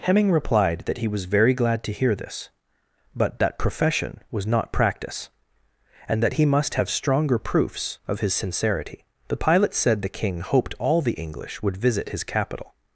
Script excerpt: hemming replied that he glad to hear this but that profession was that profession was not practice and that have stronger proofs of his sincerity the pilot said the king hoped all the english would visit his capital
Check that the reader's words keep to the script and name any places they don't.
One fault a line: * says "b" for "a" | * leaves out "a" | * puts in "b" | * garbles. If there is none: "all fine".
* puts in "was very"
* leaves out "that profession was"
* puts in "he must"